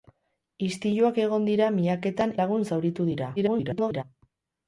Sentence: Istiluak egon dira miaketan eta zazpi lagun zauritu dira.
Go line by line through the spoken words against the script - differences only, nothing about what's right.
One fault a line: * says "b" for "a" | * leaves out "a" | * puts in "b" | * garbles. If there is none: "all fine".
* leaves out "eta zazpi"
* garbles